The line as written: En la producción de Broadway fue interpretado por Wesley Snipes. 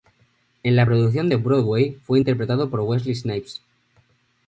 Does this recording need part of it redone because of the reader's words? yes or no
no